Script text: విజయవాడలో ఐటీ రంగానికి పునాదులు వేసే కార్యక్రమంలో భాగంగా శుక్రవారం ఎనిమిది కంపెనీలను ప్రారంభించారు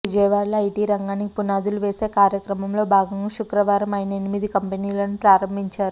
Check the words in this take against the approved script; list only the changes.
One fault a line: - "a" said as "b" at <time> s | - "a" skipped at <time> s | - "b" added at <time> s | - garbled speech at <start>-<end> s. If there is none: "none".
- "ఆయన" added at 3.9 s